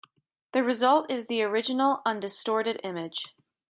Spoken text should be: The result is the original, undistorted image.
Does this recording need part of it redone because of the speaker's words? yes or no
no